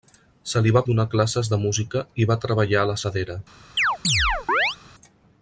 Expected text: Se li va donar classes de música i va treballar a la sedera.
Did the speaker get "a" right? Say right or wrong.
right